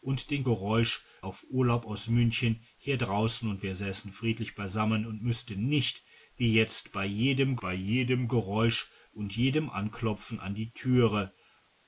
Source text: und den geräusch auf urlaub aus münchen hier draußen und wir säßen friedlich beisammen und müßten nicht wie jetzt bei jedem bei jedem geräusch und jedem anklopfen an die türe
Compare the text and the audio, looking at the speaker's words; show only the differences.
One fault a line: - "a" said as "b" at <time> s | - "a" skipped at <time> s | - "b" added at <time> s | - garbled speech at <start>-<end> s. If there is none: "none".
none